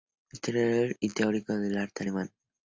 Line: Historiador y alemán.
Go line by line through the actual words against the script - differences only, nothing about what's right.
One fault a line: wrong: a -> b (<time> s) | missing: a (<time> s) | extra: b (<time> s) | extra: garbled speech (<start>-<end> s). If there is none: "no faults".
extra: teórico del arte (1.1 s)